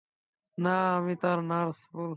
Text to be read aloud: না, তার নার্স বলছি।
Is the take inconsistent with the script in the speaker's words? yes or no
yes